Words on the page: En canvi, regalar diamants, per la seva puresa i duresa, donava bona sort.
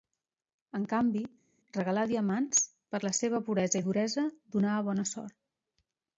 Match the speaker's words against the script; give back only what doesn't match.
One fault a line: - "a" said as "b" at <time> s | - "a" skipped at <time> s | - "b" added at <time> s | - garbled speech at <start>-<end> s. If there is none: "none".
none